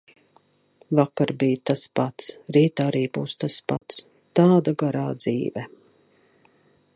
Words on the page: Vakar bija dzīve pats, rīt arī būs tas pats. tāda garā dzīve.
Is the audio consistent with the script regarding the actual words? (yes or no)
no